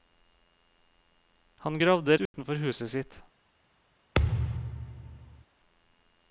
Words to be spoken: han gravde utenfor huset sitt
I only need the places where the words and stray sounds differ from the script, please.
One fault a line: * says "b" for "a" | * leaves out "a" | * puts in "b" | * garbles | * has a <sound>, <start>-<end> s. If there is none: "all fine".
* has a dropout, 2.3-2.3 s
* has a thud, 4.2-5.5 s